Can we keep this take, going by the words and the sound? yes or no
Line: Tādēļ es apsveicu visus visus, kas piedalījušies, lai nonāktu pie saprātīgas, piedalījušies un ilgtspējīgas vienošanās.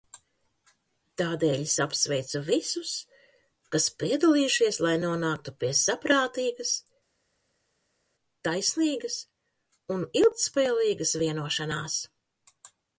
no